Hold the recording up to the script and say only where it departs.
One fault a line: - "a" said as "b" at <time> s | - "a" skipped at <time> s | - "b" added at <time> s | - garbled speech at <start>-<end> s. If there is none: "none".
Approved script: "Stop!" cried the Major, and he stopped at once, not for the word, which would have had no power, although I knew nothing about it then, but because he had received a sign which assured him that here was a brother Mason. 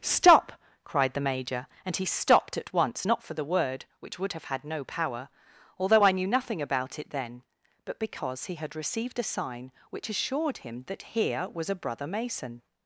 none